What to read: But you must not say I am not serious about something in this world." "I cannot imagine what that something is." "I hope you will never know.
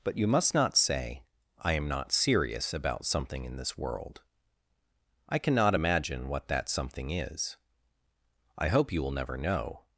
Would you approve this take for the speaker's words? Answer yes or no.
yes